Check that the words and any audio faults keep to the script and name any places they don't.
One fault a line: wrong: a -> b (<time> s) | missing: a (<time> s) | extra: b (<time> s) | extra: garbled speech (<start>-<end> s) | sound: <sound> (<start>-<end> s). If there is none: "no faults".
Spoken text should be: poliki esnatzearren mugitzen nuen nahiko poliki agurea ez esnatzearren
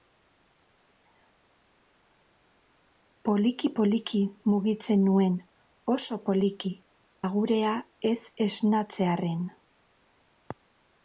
wrong: esnatzearren -> poliki (3.8 s)
wrong: nahiko -> oso (6.0 s)